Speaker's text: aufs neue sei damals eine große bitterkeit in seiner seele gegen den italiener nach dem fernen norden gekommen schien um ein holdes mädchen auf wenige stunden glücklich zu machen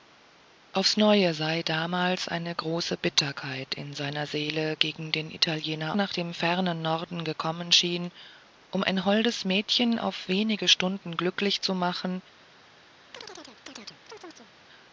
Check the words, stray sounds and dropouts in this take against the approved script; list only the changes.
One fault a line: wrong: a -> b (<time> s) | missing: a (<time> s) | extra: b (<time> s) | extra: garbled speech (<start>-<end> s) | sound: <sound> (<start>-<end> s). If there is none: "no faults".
sound: chirp (13.1-14.5 s)